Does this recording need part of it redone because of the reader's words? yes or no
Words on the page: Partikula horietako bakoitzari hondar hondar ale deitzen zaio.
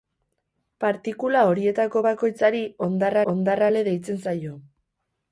no